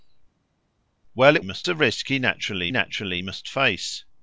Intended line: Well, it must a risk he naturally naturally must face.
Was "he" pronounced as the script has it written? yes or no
yes